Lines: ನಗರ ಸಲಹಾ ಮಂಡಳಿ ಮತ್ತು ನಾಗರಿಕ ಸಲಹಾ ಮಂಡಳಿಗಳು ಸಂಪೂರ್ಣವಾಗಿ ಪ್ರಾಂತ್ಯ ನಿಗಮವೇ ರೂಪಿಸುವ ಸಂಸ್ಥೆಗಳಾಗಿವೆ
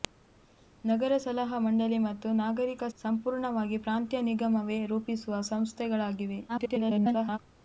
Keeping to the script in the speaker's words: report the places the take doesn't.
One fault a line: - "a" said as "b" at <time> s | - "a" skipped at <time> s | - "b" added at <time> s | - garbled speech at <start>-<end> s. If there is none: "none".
- "ಸಲಹಾ ಮಂಡಳಿಗಳು" skipped at 2.8 s
- garbled speech at 6.5-7.4 s